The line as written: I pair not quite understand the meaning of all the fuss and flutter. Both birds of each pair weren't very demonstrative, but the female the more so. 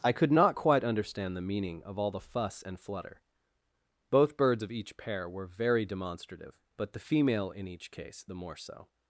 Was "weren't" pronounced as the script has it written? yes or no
no